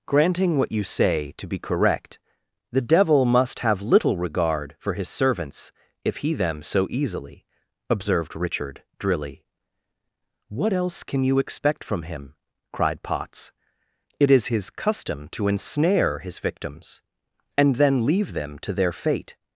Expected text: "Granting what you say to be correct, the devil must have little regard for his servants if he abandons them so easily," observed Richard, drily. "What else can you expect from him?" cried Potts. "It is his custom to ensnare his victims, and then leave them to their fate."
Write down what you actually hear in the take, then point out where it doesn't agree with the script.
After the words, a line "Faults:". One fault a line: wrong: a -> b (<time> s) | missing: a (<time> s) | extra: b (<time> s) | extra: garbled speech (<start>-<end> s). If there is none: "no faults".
"Granting what you say to be correct, the devil must have little regard for his servants if he them so easily," observed Richard, drily. "What else can you expect from him?" cried Potts. "It is his custom to ensnare his victims, and then leave them to their fate."
Faults:
missing: abandons (6.3 s)